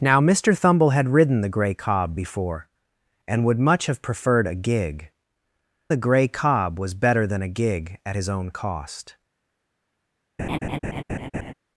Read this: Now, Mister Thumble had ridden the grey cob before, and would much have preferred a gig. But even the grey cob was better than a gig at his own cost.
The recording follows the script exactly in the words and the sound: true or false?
false